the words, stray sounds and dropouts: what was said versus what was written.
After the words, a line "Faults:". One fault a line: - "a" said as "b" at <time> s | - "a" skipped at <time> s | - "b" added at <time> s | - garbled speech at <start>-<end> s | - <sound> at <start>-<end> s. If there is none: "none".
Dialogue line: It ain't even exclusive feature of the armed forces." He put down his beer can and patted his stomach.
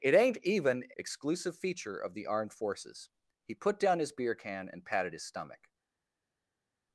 It ain't even exclusive feature of the armed forces." He put down his beer can and patted his stomach.
Faults:
none